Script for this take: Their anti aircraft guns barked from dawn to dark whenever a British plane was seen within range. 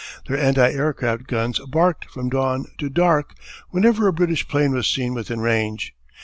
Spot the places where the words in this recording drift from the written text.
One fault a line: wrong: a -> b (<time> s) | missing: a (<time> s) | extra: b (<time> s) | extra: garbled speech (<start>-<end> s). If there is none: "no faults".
no faults